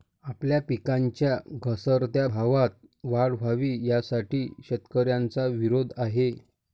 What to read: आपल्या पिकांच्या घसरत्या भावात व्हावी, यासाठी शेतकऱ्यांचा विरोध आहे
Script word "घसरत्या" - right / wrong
right